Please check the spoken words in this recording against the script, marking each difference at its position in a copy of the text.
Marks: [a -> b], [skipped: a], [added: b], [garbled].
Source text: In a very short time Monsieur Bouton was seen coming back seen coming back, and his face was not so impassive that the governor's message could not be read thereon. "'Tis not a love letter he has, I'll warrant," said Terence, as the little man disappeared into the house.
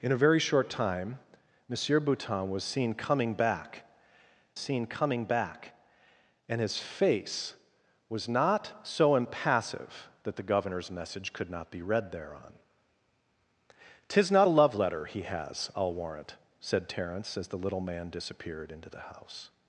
In a very short time Monsieur Bouton was seen coming back seen coming back, and his face was not so impassive that the governor's message could not be read thereon. "'Tis not a love letter he has, I'll warrant," said Terence, as the little man disappeared into the house.